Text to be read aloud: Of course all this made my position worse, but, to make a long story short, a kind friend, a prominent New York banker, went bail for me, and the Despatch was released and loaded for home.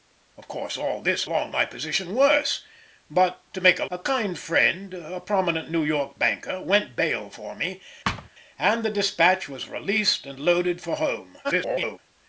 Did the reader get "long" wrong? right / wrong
wrong